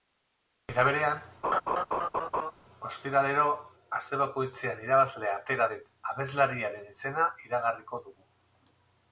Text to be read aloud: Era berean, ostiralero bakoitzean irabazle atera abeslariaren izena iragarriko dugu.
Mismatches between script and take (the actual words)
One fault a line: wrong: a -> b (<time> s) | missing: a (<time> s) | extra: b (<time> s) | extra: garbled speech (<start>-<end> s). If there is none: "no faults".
extra: aste (4.0 s)
extra: den (5.7 s)